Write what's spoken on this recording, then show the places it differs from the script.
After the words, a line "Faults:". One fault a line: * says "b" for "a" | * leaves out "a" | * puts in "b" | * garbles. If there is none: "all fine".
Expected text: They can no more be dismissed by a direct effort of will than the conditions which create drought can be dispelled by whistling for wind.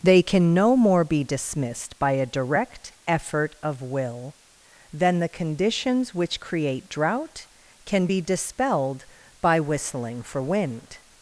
They can no more be dismissed by a direct effort of will than the conditions which create drought can be dispelled by whistling for wind.
Faults:
all fine